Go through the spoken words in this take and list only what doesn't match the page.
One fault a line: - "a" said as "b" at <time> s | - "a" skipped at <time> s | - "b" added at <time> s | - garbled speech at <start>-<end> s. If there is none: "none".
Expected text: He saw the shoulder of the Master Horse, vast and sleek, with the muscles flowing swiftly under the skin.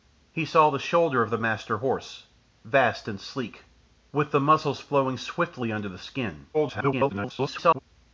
- garbled speech at 6.5-7.8 s